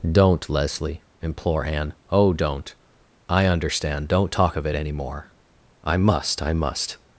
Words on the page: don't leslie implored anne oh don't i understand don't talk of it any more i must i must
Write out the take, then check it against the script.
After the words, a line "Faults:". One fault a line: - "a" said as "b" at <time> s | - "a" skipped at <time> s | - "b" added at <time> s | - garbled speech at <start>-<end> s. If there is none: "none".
don't leslie implore anne oh don't i understand don't talk of it any more i must i must
Faults:
- "implored" said as "implore" at 1.2 s